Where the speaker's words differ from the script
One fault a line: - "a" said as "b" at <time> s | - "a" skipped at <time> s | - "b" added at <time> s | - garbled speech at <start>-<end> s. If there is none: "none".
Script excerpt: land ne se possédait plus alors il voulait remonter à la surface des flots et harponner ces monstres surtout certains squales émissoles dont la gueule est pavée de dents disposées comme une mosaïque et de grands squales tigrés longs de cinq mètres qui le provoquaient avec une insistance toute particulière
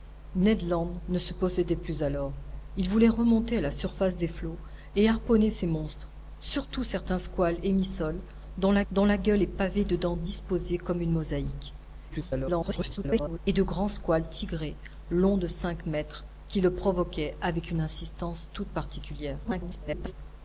- "dont la" added at 8.9 s
- garbled speech at 12.1-13.4 s
- garbled speech at 19.4-20.1 s